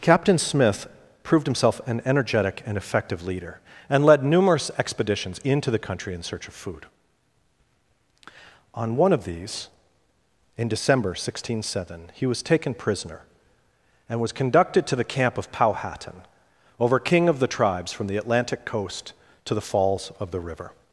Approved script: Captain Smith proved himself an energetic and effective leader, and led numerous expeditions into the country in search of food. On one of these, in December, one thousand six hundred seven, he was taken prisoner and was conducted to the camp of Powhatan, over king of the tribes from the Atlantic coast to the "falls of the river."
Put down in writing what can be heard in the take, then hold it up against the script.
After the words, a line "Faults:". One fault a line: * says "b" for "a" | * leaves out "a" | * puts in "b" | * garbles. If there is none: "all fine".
Captain Smith proved himself an energetic and effective leader, and led numerous expeditions into the country in search of food. On one of these, in December, one thousand six hundred seven, he was taken prisoner and was conducted to the camp of Powhatan, over king of the tribes from the Atlantic coast to the "falls of the river."
Faults:
all fine